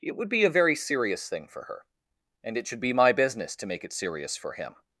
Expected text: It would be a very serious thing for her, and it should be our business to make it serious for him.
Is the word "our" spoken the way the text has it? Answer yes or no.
no